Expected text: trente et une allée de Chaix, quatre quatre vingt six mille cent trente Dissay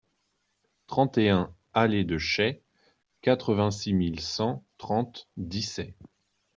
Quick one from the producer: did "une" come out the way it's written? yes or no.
no